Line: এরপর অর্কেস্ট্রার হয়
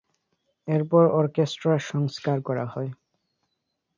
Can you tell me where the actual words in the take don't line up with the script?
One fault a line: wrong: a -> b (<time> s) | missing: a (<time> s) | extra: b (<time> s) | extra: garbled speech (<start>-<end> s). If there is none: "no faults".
extra: সংস্কার করা (1.9 s)